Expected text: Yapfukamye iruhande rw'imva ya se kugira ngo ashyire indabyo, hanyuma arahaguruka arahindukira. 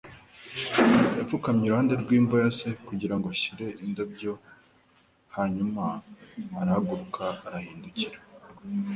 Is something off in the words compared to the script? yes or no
no